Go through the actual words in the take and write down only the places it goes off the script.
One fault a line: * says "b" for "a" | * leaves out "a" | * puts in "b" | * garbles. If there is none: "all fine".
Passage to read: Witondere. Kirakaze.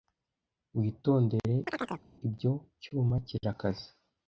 * puts in "Ibyo cyuma"